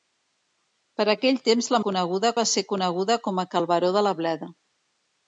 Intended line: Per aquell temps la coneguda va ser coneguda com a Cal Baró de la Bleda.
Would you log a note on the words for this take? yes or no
no